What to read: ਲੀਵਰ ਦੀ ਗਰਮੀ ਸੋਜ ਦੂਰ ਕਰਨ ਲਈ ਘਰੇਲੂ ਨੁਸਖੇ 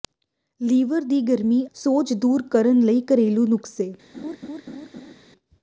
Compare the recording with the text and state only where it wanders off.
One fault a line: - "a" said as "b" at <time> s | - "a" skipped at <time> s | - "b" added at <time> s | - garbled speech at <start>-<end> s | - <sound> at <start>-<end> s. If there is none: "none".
- laugh at 4.1-5.1 s